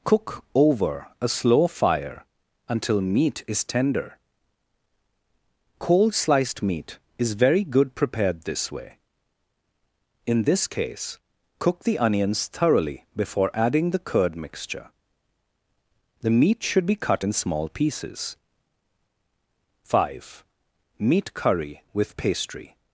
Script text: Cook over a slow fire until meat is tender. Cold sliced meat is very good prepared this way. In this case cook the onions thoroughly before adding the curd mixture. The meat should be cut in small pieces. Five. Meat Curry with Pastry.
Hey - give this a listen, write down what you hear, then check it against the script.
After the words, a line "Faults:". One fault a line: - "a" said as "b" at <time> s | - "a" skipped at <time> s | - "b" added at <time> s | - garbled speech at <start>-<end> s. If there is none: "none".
Cook over a slow fire until meat is tender. Cold sliced meat is very good prepared this way. In this case cook the onions thoroughly before adding the curd mixture. The meat should be cut in small pieces. Five. Meat Curry with Pastry.
Faults:
none